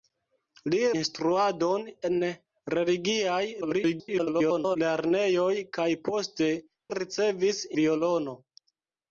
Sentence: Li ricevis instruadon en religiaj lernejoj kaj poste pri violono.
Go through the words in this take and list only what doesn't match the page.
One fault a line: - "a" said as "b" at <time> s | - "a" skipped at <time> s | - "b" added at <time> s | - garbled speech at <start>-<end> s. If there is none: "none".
- "ricevis" skipped at 0.8 s
- garbled speech at 3.6-4.8 s
- "pri" said as "ricevis" at 6.9 s